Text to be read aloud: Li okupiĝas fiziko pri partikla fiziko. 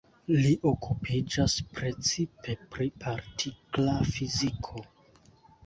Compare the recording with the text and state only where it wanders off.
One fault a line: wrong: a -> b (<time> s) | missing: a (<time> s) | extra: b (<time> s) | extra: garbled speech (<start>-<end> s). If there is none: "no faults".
wrong: fiziko -> precipe (1.8 s)